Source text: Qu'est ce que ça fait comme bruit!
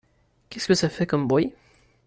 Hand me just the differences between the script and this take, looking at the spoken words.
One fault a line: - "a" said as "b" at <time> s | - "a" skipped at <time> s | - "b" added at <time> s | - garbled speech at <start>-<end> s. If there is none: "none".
none